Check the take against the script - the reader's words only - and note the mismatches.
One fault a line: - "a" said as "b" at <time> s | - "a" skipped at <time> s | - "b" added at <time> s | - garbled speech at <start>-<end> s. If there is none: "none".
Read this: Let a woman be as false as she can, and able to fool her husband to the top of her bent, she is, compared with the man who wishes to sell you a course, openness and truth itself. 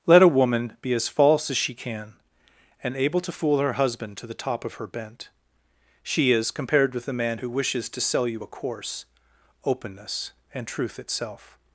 none